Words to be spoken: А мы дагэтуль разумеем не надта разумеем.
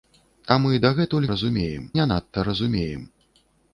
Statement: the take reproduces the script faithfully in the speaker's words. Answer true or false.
true